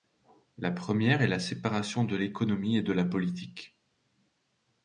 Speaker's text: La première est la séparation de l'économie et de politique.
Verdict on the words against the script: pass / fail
fail